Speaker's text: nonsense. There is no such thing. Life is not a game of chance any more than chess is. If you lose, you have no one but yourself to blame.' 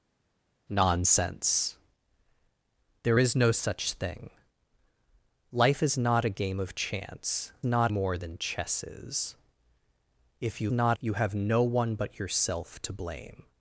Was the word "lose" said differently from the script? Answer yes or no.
yes